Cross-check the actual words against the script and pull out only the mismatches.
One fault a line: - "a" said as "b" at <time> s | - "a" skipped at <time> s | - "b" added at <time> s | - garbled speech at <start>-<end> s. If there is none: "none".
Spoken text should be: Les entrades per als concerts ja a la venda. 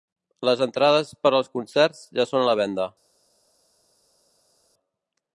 - "són" added at 2.3 s